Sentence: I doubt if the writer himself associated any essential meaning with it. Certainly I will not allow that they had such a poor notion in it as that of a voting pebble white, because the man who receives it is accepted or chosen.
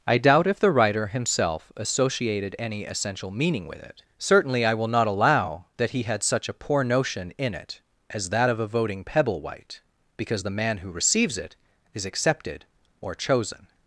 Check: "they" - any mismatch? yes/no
yes